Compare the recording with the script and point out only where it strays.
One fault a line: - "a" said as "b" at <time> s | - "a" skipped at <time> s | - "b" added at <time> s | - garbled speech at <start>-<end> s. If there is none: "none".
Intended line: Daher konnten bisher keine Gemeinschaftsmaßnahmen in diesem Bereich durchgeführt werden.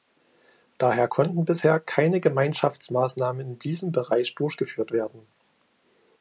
none